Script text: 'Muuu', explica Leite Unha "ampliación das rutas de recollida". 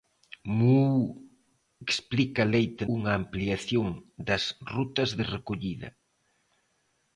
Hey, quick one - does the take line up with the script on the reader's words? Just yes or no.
yes